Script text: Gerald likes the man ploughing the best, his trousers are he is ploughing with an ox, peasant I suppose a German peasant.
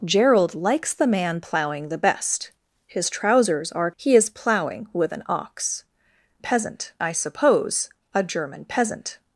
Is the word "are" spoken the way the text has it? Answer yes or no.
yes